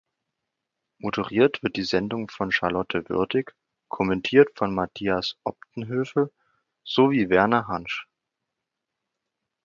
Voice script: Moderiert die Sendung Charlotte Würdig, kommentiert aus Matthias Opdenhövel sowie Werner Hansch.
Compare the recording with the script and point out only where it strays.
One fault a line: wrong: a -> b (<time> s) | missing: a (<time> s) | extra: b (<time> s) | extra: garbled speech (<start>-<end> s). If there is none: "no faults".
extra: wird (1.6 s)
extra: von (2.3 s)
wrong: aus -> von (4.5 s)